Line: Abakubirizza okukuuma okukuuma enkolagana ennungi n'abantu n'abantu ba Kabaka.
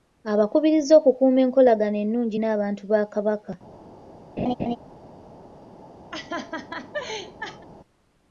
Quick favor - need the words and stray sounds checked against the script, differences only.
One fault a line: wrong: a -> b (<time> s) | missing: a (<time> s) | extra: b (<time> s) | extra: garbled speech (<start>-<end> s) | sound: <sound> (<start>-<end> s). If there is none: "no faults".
missing: okukuuma (1.4 s)
missing: n'abantu (2.8 s)
sound: laugh (4.4-4.8 s)
sound: laugh (6.1-7.7 s)